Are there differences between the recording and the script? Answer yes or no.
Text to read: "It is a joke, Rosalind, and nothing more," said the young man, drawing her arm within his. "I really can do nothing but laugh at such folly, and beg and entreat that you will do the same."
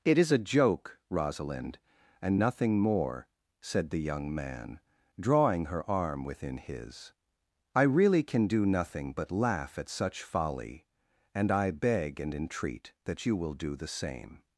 yes